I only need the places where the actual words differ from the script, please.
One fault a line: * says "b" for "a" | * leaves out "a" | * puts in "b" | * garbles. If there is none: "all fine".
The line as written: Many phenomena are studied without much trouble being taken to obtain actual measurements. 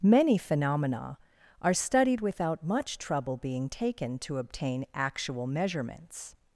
all fine